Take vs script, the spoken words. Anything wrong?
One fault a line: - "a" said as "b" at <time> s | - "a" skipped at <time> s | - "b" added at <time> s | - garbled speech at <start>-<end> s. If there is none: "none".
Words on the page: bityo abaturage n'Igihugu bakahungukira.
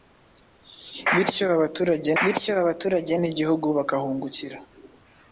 - "bityo abaturage" added at 2.2 s